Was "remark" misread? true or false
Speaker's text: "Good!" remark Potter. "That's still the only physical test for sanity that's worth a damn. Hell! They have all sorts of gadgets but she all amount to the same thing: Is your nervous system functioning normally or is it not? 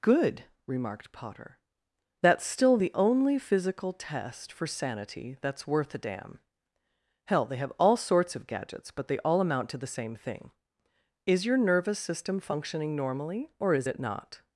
true